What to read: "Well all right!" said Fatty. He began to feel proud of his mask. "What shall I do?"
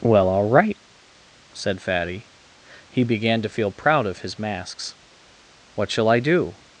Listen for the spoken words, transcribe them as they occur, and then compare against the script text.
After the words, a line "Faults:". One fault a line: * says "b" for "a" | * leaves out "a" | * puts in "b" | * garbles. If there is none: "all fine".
"Well all right!" said Fatty. He began to feel proud of his masks. "What shall I do?"
Faults:
* says "masks" for "mask"